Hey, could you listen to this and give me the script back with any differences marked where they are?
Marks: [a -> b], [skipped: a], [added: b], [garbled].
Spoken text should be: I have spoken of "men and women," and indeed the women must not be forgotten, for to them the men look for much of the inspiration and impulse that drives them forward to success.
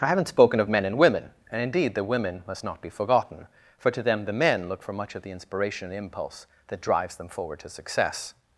I [have -> haven't] spoken of "men and women," and indeed the women must not be forgotten, for to them the men look for much of the inspiration and impulse that drives them forward to success.